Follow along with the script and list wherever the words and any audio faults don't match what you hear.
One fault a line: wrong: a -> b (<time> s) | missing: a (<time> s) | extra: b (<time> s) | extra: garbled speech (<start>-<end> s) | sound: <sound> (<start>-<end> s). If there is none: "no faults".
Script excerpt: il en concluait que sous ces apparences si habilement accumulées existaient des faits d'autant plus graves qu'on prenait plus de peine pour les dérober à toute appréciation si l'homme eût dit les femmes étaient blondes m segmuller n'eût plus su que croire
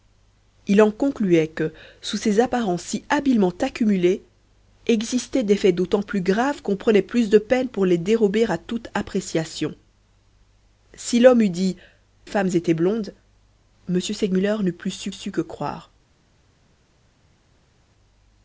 missing: les (11.8 s)
extra: su (15.1 s)